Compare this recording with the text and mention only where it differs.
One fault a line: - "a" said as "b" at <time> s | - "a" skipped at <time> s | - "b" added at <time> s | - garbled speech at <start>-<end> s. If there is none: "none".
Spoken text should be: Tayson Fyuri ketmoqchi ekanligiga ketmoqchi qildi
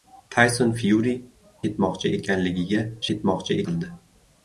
none